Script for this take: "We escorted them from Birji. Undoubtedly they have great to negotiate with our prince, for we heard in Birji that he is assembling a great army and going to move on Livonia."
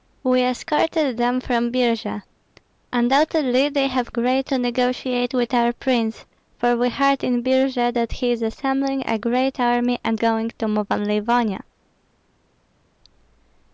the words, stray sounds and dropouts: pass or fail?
pass